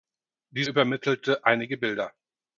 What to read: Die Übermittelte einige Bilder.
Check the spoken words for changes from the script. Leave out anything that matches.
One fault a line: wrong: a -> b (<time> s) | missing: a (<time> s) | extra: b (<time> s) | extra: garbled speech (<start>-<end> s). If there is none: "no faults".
no faults